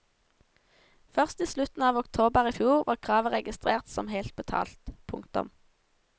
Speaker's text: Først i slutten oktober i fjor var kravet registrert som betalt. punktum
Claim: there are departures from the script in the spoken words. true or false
true